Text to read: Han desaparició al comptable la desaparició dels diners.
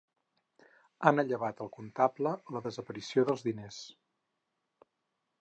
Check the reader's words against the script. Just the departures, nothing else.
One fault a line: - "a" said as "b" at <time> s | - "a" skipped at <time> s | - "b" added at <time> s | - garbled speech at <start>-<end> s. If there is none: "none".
- "desaparició" said as "allevat" at 1.2 s